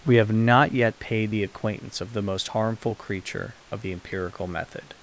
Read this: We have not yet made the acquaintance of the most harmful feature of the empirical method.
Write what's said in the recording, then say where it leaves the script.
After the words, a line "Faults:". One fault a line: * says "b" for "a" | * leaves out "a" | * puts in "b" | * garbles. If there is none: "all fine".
We have not yet paid the acquaintance of the most harmful creature of the empirical method.
Faults:
* says "paid" for "made"
* says "creature" for "feature"